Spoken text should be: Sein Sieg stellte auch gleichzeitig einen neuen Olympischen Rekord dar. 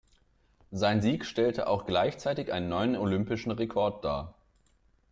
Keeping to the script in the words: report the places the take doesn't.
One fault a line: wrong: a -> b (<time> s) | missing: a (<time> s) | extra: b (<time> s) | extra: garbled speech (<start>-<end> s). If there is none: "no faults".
no faults